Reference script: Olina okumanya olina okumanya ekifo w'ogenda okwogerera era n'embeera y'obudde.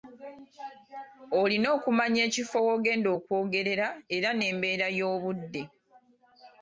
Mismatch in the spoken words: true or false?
true